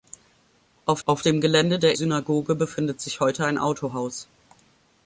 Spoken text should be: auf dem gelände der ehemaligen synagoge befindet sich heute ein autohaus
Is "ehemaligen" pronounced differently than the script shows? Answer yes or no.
yes